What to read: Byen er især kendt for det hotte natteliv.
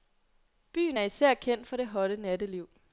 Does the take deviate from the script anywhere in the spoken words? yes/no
no